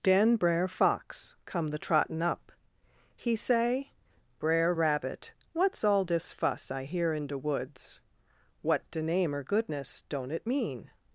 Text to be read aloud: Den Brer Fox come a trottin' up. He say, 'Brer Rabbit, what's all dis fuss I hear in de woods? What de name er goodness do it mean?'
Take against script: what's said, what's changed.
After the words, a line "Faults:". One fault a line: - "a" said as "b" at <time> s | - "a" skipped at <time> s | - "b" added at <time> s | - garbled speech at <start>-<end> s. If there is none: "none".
Den Brer Fox come the trottin' up. He say, 'Brer Rabbit, what's all dis fuss I hear in de woods? What de name er goodness don't it mean?'
Faults:
- "a" said as "the" at 1.7 s
- "do" said as "don't" at 10.1 s